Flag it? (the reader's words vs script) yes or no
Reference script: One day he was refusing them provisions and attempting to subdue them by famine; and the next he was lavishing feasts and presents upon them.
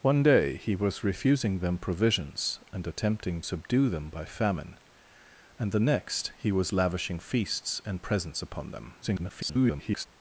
yes